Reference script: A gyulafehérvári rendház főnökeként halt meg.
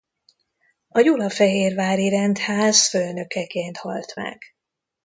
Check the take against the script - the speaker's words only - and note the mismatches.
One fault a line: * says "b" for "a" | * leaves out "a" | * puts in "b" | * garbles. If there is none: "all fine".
all fine